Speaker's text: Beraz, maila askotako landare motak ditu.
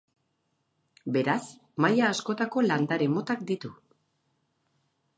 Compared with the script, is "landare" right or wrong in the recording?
right